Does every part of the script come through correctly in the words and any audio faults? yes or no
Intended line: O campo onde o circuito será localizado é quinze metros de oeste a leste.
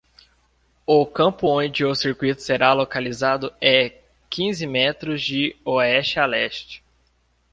yes